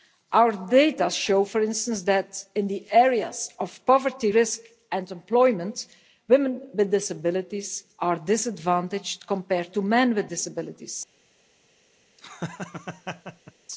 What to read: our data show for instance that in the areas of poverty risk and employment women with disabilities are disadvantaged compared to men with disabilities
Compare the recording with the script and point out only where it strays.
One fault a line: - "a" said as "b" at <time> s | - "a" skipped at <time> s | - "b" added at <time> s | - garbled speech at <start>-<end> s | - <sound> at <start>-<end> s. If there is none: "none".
- laugh at 12.2-13.5 s